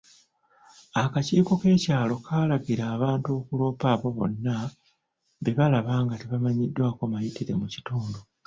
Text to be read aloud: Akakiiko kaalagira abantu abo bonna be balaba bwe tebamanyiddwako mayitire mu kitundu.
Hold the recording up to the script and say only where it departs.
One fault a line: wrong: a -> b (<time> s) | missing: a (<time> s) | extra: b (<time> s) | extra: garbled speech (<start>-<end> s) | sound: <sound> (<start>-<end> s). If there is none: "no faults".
extra: k'ekyalo (1.6 s)
extra: okuloopa (3.4 s)
wrong: bwe -> nga (6.0 s)